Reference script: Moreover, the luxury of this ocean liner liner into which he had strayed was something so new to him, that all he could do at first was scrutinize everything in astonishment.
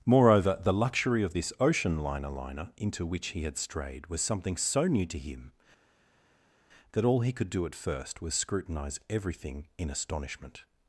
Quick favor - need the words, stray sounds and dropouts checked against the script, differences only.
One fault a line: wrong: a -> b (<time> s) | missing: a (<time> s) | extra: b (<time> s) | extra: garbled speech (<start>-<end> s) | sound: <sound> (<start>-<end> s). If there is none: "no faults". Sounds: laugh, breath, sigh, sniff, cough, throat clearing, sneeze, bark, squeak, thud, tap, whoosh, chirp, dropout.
no faults